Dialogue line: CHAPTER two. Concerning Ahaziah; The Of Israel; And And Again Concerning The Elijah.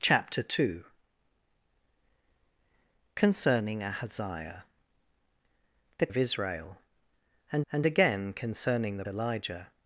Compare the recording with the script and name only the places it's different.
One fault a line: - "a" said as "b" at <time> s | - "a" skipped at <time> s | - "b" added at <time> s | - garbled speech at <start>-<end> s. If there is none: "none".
none